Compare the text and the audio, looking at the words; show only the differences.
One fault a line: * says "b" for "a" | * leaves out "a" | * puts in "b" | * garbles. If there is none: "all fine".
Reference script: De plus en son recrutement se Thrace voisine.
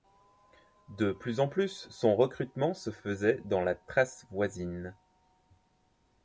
* puts in "plus"
* puts in "faisait dans la"